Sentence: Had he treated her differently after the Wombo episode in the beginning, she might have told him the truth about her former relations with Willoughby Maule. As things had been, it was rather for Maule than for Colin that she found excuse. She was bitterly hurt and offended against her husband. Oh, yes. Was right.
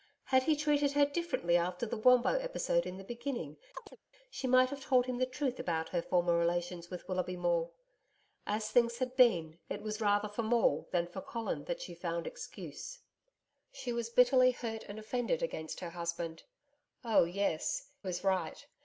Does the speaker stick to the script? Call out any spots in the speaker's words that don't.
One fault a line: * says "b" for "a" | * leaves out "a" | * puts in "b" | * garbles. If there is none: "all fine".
all fine